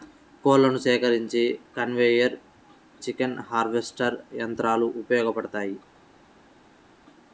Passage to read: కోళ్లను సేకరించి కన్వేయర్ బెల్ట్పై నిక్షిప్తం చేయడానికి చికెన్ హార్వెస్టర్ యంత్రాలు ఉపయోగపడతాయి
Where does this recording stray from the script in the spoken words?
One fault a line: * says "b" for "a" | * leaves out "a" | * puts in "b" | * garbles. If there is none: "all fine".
* leaves out "బెల్ట్పై నిక్షిప్తం చేయడానికి"